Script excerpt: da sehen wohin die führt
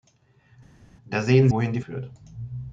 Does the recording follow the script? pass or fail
pass